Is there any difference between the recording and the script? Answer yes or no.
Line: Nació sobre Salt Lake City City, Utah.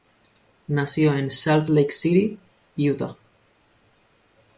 yes